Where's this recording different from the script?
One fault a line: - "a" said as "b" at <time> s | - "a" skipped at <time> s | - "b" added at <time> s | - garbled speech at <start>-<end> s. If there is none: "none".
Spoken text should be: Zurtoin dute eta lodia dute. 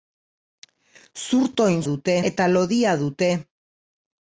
none